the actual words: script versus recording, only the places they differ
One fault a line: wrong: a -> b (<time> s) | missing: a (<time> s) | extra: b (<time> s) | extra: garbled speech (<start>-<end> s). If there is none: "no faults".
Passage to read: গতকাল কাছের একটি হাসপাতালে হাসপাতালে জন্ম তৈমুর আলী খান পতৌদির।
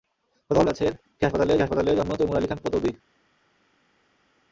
no faults